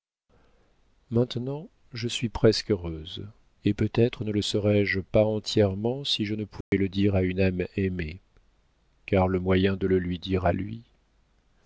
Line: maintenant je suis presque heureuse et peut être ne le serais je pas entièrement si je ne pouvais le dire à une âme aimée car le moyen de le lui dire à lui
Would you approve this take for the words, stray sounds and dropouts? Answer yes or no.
no